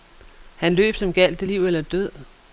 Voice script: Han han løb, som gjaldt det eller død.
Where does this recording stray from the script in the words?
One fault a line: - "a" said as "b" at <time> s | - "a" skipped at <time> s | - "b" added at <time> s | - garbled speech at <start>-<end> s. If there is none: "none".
- "han" skipped at 0.8 s
- "liv" added at 1.5 s